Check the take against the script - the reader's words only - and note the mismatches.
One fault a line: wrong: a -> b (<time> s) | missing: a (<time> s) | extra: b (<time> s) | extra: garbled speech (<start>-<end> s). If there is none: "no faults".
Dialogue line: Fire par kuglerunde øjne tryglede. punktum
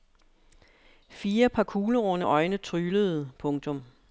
no faults